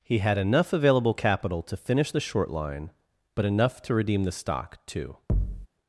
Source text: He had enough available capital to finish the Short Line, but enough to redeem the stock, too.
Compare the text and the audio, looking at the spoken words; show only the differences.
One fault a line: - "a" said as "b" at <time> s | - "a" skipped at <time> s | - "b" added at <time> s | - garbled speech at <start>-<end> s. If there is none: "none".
none